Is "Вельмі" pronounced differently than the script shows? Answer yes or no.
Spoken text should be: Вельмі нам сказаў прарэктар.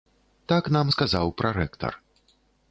yes